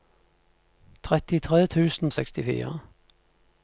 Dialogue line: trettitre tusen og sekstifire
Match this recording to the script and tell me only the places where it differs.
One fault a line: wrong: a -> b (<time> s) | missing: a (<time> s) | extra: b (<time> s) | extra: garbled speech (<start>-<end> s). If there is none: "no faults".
no faults